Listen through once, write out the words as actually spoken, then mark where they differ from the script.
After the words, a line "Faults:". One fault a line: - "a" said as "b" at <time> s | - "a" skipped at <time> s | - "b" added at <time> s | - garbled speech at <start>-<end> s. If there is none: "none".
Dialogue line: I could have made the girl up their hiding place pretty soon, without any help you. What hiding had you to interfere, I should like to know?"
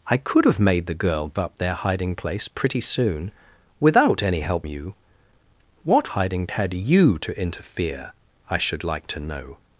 I could have made the girl up their hiding place pretty soon, without any help you. What hiding had you to interfere, I should like to know?"
Faults:
none